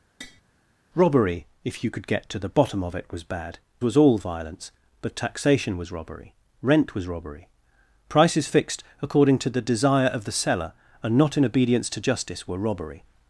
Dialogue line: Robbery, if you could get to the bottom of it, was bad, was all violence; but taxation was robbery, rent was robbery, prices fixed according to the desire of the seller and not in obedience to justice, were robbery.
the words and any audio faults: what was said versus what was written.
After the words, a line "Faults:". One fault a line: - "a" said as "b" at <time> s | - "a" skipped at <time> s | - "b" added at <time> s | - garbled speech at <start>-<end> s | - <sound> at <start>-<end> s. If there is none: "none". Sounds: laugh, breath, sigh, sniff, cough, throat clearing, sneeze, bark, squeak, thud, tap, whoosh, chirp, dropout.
Robbery, if you could get to the bottom of it, was bad, was all violence; but taxation was robbery, rent was robbery, prices fixed according to the desire of the seller and not in obedience to justice, were robbery.
Faults:
- tap at 0.2-0.4 s